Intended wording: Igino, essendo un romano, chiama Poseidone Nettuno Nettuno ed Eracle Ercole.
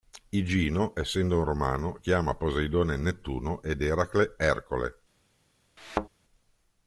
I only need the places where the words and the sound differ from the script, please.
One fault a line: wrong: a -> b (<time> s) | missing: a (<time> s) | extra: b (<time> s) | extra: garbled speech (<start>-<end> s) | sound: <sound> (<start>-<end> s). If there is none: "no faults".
missing: Nettuno (3.6 s)
sound: thud (5.8-6.1 s)